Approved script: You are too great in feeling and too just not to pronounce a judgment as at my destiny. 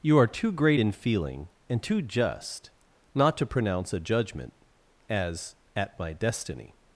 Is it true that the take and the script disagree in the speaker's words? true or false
false